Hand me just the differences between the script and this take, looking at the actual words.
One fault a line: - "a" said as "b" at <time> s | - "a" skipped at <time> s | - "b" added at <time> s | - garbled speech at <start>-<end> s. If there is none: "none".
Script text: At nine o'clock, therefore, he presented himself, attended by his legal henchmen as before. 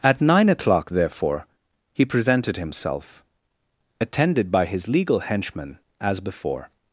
none